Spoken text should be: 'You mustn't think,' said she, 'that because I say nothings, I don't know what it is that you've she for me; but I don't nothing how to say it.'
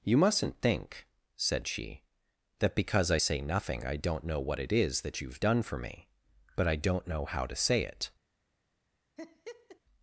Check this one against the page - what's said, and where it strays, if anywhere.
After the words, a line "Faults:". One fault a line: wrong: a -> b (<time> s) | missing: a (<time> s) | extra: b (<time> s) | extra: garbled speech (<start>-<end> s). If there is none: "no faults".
'You mustn't think,' said she, 'that because I say nothing, I don't know what it is that you've done for me; but I don't know how to say it.'
Faults:
wrong: nothings -> nothing (3.4 s)
wrong: she -> done (5.4 s)
wrong: nothing -> know (7.1 s)